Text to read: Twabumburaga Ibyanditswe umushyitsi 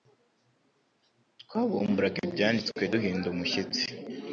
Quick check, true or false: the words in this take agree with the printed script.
false